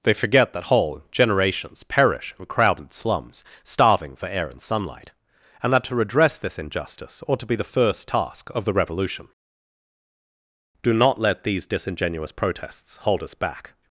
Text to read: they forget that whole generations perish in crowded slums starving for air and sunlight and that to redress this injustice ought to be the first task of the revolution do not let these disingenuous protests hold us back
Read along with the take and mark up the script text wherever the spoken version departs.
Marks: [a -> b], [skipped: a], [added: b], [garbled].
they forget that whole generations perish in crowded slums starving for air and sunlight and that to redress this injustice ought to be the first task of the revolution do not let these disingenuous protests hold us back